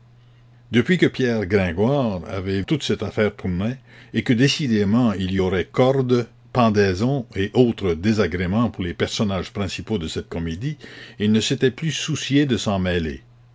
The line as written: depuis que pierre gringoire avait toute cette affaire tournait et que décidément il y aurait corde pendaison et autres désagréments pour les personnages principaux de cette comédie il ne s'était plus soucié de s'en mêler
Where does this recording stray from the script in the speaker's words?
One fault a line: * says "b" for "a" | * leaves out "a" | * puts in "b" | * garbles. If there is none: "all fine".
all fine